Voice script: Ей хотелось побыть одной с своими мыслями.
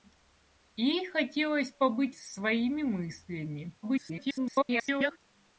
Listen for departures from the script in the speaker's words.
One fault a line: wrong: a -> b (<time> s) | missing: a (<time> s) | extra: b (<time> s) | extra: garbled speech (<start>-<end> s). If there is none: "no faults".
missing: одной (2.1 s)
extra: garbled speech (3.8-5.2 s)